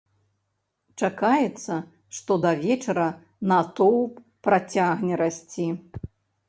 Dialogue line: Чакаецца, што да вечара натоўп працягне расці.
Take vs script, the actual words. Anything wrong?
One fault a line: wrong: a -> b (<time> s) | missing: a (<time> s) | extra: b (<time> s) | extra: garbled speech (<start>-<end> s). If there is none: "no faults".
no faults